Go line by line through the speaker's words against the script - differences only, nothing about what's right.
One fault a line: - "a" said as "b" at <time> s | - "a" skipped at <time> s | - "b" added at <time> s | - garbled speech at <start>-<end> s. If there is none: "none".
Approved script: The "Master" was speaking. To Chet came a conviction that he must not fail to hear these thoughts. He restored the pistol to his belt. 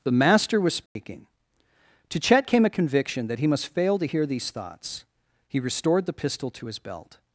- "not" skipped at 3.7 s